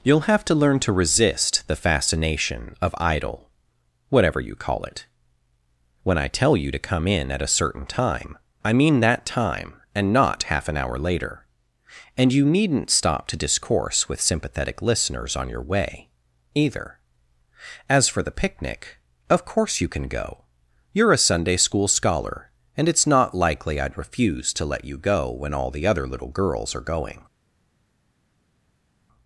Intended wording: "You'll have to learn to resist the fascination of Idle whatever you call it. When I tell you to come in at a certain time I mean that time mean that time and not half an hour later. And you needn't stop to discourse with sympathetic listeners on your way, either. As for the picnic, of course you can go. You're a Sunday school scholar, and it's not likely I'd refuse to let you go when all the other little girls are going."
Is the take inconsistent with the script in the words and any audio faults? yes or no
yes